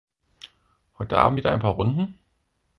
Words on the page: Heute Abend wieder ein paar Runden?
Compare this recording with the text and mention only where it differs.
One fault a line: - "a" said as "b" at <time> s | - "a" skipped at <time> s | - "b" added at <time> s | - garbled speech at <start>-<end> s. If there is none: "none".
none